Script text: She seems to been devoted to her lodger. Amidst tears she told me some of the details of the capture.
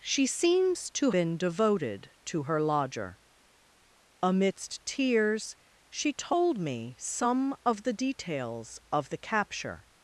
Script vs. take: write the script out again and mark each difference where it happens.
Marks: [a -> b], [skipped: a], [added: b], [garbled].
She seems to been devoted to her lodger. Amidst tears she told me some of the details of the capture.